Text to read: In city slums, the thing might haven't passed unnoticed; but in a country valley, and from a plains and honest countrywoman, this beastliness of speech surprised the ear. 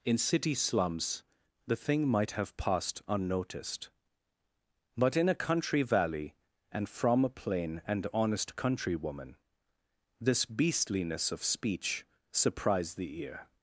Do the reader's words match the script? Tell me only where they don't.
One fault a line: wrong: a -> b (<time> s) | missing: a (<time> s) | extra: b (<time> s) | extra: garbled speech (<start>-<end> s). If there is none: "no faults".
wrong: haven't -> have (2.3 s)
wrong: plains -> plain (7.3 s)